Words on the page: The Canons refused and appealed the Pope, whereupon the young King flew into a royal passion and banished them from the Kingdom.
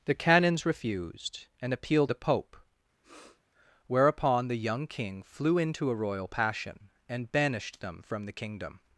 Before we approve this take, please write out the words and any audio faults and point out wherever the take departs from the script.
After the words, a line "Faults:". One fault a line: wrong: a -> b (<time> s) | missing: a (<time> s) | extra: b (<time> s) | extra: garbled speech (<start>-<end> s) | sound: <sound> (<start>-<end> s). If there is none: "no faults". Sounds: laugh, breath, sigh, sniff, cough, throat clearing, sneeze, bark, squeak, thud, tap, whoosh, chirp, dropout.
The Canons refused and appealed the Pope, whereupon the young King flew into a royal passion and banished them from the Kingdom.
Faults:
sound: sniff (3.0-3.4 s)